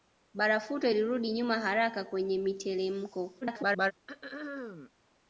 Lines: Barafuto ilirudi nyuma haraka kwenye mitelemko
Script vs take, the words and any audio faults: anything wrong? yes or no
yes